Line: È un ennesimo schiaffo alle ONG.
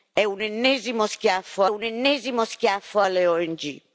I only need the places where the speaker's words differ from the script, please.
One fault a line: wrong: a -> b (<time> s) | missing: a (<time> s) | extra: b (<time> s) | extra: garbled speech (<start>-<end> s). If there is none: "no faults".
extra: un ennesimo schiaffo (1.7 s)